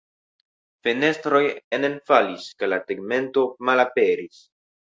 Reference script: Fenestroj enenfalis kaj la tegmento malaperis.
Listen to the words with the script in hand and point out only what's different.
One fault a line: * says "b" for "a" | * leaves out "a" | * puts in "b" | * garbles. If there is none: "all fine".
all fine